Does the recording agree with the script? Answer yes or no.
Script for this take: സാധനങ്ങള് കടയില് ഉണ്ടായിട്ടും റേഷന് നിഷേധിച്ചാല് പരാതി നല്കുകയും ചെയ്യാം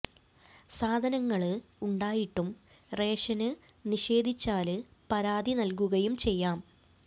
no